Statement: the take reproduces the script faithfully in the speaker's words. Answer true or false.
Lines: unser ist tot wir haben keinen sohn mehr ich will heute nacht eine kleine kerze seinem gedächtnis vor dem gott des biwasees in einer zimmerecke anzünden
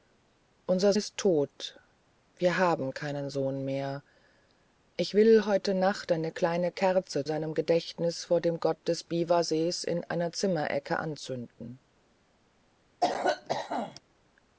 true